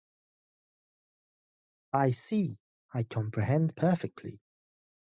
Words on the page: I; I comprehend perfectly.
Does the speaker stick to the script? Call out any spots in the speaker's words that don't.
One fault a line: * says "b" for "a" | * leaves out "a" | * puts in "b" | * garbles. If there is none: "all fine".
* puts in "see"